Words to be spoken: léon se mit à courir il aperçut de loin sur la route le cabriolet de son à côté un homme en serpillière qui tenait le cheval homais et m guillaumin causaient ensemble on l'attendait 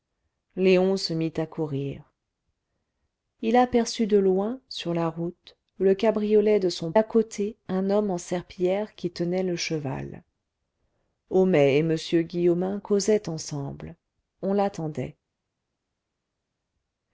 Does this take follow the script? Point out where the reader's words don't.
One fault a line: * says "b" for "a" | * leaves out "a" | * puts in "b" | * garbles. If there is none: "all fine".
all fine